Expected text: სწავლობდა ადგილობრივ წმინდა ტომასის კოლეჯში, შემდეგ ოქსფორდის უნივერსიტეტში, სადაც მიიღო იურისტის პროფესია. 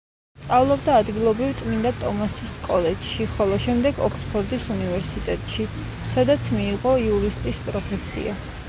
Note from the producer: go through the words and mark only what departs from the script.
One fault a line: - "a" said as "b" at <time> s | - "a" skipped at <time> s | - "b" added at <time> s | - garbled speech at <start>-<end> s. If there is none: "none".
- "ხოლო" added at 3.3 s